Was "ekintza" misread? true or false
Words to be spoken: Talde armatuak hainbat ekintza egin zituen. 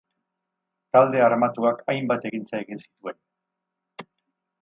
false